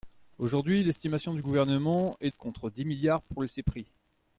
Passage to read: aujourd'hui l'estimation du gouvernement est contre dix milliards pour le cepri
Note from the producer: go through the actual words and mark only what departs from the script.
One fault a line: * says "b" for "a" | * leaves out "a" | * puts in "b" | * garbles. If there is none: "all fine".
all fine